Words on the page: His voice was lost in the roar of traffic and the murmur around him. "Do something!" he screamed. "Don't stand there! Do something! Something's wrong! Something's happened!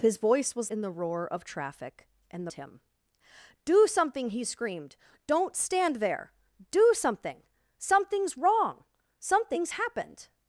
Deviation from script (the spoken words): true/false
true